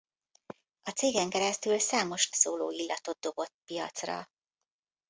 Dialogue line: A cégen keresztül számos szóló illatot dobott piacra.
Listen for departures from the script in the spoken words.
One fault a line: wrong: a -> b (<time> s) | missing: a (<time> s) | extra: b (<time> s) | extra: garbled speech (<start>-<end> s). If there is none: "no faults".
no faults